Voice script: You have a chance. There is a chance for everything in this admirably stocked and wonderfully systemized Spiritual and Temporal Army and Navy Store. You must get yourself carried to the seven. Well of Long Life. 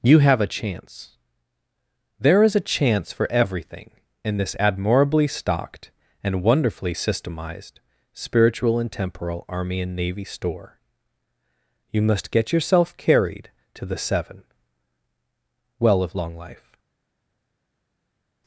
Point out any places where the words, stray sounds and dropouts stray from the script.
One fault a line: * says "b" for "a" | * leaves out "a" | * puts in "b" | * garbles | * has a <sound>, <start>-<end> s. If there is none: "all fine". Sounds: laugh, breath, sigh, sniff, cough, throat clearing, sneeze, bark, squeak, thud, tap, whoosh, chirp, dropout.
all fine